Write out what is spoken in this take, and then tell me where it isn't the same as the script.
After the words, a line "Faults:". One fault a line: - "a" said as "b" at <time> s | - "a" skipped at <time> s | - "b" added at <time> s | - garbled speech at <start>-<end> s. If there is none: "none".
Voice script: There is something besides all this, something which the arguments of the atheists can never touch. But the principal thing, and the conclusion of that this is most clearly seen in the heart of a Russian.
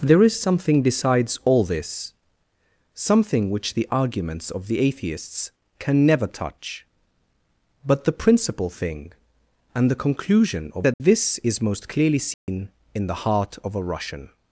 There is something besides all this, something which the arguments of the atheists can never touch. But the principal thing, and the conclusion of that this is most clearly seen in the heart of a Russian.
Faults:
none